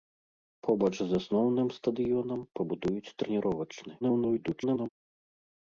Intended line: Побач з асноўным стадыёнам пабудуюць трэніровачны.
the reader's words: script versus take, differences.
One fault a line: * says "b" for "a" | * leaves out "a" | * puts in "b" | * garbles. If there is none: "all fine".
* garbles